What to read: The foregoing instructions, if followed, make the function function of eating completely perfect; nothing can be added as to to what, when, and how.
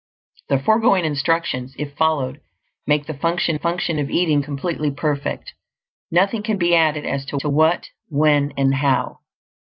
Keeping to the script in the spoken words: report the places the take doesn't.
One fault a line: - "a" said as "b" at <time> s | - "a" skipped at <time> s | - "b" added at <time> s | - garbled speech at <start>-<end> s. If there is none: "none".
none